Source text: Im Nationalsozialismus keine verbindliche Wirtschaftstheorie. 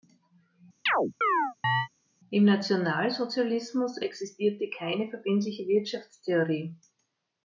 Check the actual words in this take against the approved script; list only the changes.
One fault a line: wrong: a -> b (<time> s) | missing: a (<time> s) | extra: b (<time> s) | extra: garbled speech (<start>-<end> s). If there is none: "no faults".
extra: existierte (4.0 s)